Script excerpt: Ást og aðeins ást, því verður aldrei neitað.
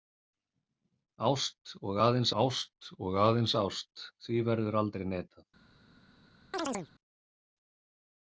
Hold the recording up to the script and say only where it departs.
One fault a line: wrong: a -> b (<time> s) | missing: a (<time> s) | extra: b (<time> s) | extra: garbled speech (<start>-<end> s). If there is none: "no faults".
extra: og aðeins ást (3.1 s)